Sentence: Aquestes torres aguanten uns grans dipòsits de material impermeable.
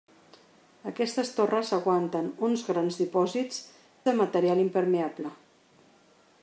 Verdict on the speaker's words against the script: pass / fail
pass